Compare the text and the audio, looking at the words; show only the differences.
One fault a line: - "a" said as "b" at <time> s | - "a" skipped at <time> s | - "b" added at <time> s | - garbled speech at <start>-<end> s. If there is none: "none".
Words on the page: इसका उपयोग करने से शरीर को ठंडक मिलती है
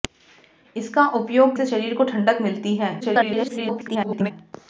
- "करने" skipped at 1.6 s
- garbled speech at 3.0-4.3 s